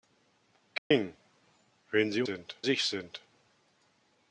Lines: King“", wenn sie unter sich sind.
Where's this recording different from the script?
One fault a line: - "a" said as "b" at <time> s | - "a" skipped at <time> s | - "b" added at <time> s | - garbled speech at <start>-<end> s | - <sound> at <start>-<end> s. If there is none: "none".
- dropout at 0.8-0.9 s
- "unter" said as "sind" at 2.2 s